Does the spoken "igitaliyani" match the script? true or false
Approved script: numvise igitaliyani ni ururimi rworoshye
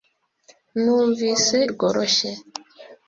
false